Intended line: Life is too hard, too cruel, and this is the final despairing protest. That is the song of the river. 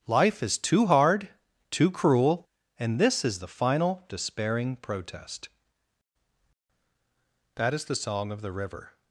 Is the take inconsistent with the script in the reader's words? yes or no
no